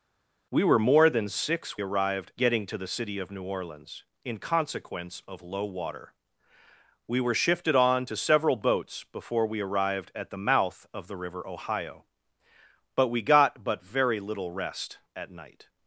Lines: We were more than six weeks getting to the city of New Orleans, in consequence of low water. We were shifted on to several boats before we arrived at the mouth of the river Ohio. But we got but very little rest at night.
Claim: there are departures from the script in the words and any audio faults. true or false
true